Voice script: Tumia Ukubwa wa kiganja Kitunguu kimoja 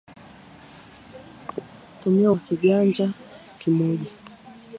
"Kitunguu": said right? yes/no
no